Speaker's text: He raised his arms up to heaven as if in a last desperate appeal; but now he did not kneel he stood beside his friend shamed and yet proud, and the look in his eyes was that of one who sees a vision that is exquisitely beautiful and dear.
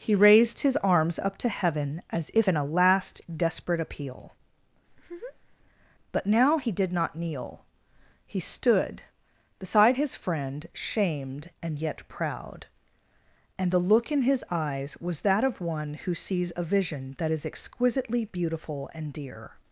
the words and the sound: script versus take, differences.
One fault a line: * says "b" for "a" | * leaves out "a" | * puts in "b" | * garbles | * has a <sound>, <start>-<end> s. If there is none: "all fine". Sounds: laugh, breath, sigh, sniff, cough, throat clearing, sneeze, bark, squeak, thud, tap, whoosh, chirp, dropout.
* has a laugh, 4.9-5.6 s